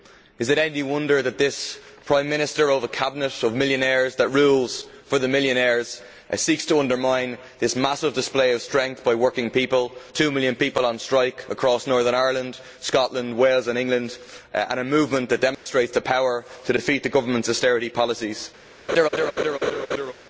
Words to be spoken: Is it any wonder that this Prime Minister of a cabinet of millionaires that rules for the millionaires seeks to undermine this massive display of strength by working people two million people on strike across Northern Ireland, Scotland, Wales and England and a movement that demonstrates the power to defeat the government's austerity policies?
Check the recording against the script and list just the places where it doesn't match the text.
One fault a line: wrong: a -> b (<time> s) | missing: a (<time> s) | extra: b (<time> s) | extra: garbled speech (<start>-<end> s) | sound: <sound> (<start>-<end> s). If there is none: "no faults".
sound: dropout (15.5-15.7 s)
sound: laugh (18.9-20.1 s)